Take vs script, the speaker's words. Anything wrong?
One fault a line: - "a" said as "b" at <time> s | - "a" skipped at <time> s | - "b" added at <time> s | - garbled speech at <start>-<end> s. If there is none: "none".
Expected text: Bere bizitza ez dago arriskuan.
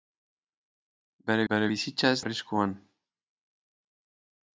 - "bere" added at 1.5 s
- "dago" skipped at 2.2 s